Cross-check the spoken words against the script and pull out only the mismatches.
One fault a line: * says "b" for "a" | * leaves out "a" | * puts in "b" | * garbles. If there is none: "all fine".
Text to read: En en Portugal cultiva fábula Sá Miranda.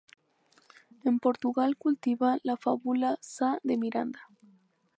* leaves out "en"
* puts in "la"
* puts in "de"